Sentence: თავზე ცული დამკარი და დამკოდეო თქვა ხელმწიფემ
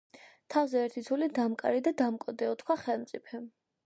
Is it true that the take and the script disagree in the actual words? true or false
true